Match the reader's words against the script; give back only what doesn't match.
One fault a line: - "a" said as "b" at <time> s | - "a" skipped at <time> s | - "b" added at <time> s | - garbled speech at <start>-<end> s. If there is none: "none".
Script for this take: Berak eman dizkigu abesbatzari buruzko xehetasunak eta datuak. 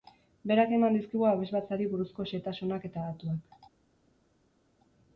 none